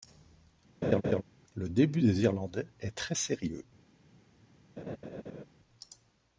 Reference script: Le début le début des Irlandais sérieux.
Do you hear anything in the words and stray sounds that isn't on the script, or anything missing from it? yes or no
yes